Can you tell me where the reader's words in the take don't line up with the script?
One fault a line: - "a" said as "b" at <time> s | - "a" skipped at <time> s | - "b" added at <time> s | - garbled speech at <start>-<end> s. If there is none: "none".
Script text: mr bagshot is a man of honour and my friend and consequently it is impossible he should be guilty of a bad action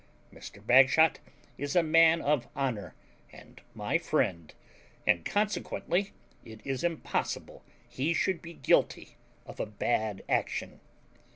none